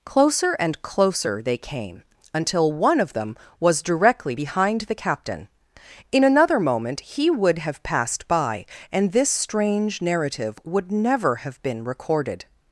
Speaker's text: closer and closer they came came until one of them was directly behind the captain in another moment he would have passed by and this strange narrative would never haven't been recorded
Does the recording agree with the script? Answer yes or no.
no